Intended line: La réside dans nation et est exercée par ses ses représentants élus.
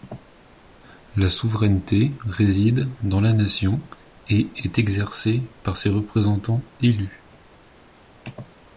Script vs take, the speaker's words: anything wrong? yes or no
yes